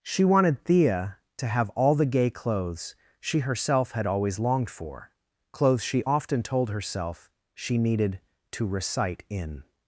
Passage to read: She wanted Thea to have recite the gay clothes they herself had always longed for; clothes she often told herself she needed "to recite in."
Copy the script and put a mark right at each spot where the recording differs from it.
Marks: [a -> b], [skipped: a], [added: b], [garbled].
She wanted Thea to have [recite -> all] the gay clothes [they -> she] herself had always longed for; clothes she often told herself she needed "to recite in."